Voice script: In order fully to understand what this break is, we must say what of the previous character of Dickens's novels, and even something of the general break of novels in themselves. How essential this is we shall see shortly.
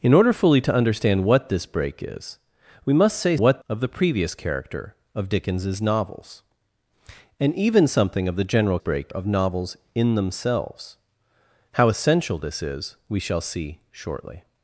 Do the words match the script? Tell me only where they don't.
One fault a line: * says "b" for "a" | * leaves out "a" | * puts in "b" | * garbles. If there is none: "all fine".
all fine